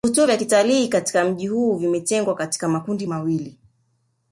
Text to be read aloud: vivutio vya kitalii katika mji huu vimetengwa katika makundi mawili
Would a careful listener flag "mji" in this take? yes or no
no